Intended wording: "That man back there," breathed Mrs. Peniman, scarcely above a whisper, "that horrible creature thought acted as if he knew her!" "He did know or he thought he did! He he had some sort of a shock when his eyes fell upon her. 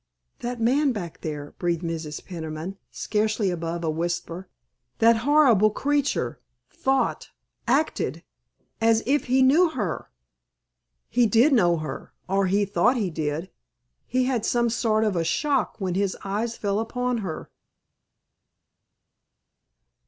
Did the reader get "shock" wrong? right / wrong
right